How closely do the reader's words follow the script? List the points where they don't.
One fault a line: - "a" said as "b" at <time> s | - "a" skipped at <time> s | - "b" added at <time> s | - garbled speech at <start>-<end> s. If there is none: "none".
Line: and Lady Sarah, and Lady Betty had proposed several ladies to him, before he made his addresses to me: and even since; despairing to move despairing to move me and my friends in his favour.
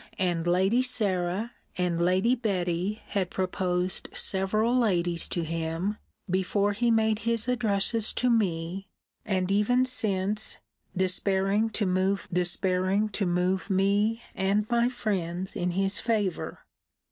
none